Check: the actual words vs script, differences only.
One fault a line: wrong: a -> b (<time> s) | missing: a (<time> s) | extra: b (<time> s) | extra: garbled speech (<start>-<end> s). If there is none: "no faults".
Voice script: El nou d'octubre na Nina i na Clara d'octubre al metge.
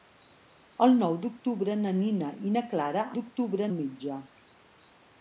no faults